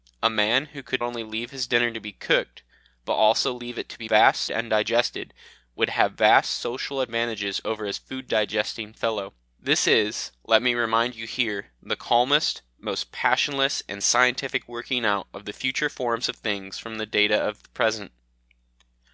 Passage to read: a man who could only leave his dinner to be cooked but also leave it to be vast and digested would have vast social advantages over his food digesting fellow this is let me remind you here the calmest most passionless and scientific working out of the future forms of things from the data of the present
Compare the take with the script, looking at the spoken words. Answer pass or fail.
pass